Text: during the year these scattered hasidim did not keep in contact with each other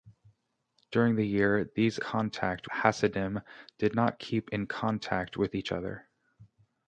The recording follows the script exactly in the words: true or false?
false